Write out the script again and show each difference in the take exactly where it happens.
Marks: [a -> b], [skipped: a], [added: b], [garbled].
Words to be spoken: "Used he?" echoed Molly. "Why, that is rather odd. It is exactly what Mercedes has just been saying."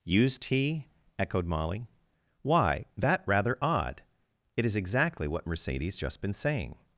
"Used he?" echoed Molly. "Why, that [skipped: is] rather odd. It is exactly what Mercedes [skipped: has] just been saying."